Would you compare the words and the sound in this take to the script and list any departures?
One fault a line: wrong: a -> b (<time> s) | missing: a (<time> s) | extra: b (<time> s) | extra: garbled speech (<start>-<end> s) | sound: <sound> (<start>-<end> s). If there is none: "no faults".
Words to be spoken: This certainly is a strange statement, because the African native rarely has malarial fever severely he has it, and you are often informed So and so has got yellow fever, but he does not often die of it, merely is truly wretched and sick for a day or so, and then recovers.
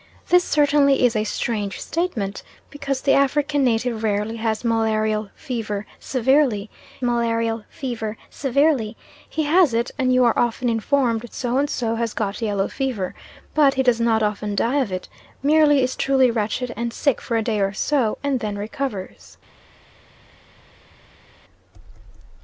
extra: malarial fever severely (7.0 s)